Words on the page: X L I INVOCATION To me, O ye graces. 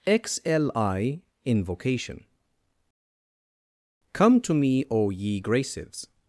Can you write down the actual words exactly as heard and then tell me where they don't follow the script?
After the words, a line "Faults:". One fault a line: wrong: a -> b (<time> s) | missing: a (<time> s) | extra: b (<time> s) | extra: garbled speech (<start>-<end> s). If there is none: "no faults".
X L I INVOCATION Come to me, O ye graces.
Faults:
extra: Come (4.1 s)